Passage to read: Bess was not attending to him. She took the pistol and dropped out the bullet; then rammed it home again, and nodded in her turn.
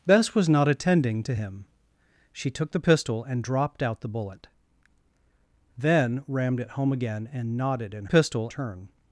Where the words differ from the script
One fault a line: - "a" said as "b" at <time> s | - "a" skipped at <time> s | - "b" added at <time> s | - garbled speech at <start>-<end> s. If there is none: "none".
- "her" said as "pistol" at 8.0 s